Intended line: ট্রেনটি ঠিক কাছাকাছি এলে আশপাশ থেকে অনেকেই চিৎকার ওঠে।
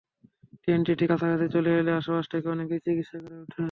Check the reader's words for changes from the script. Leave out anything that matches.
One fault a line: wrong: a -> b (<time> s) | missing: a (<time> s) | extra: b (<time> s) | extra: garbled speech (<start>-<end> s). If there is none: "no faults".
extra: চলে (1.5 s)
extra: করে (3.2 s)